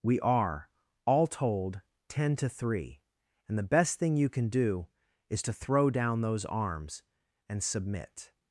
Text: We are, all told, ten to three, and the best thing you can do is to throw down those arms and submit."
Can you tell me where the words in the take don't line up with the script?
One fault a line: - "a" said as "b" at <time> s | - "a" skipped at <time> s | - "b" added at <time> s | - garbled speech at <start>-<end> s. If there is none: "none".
none